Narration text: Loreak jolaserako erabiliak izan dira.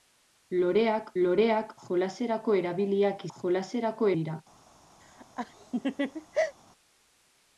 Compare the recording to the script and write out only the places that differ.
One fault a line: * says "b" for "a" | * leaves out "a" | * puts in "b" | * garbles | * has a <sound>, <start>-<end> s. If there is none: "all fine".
* puts in "loreak"
* says "jolaserako" for "izan"
* has a laugh, 5.0-6.5 s